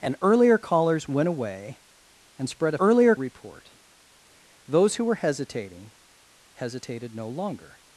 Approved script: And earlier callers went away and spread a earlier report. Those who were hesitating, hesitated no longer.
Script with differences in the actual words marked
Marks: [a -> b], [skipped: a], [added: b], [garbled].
And earlier callers went away and spread a earlier report. Those who were hesitating, hesitated no longer.